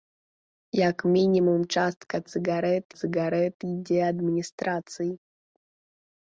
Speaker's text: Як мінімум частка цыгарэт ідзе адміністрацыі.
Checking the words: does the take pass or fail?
fail